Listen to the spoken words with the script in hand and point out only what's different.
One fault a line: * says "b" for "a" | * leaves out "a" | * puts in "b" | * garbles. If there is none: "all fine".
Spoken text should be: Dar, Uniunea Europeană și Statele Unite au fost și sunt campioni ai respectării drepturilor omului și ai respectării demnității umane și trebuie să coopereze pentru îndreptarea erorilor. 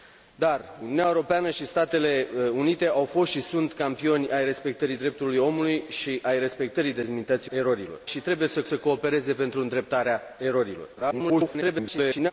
* says "erorilor" for "umane"
* puts in "să"
* garbles